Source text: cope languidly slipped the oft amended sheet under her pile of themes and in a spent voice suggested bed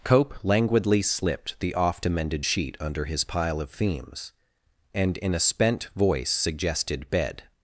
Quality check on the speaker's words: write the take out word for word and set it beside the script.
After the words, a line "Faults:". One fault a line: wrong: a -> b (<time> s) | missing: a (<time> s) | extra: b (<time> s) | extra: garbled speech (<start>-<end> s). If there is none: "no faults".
cope languidly slipped the oft amended sheet under his pile of themes and in a spent voice suggested bed
Faults:
wrong: her -> his (3.1 s)